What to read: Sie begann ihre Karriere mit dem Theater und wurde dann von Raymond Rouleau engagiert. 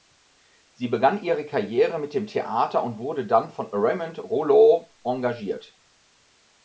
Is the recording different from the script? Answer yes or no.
no